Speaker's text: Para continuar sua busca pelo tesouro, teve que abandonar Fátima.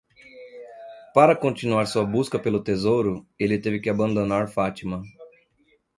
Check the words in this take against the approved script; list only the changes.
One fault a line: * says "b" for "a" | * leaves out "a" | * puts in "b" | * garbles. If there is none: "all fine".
* puts in "ele"